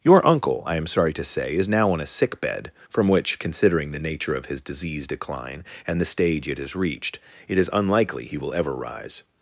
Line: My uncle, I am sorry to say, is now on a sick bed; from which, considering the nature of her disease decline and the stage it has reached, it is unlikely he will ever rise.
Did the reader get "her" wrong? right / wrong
wrong